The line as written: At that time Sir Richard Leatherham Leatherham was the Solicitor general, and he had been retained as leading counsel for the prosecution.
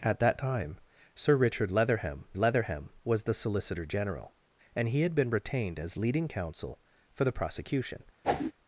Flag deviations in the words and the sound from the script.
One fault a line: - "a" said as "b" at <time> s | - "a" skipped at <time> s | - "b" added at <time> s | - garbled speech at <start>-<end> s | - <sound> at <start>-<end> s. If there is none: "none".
- whoosh at 8.2-8.5 s